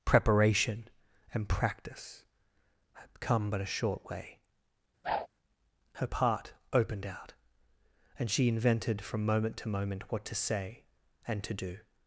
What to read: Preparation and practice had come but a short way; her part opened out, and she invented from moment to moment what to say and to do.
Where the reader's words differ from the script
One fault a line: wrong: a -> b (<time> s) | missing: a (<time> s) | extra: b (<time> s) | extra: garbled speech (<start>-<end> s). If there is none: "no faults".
no faults